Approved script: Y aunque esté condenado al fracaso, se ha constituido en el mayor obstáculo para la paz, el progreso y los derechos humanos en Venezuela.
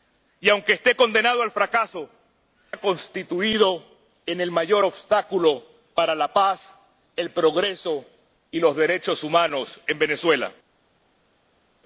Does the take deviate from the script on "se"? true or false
true